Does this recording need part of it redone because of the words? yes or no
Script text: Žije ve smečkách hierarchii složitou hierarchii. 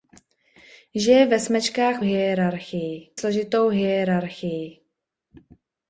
no